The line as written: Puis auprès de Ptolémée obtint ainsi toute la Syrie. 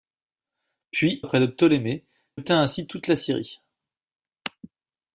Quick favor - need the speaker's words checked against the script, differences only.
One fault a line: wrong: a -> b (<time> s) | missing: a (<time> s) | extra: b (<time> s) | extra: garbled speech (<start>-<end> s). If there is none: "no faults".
no faults